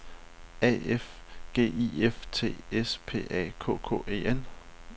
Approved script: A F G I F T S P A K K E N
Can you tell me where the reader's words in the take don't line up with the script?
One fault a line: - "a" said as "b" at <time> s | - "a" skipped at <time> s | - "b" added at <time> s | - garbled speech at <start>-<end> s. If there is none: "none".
none